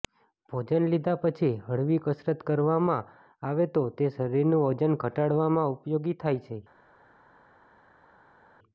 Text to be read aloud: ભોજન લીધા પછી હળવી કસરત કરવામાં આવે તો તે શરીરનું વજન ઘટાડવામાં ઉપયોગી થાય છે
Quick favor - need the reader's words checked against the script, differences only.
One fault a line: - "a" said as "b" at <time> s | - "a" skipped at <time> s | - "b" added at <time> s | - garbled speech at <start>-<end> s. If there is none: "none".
none